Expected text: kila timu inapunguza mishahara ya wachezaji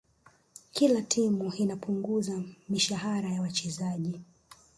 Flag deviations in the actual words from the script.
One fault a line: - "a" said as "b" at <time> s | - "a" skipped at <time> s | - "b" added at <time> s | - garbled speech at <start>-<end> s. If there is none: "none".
none